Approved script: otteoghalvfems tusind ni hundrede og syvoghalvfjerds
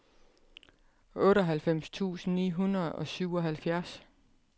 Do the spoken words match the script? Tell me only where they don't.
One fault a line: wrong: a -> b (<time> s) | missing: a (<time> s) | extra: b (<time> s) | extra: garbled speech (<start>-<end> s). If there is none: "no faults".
no faults